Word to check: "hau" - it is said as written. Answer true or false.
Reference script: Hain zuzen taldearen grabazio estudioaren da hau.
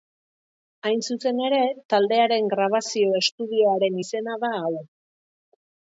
true